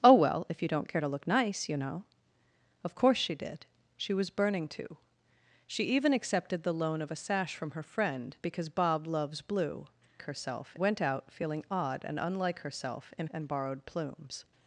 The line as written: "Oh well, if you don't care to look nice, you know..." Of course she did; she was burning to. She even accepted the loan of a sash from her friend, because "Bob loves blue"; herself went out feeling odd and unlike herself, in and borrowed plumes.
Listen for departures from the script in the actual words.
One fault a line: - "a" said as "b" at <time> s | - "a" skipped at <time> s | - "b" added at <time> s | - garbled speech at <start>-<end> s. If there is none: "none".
none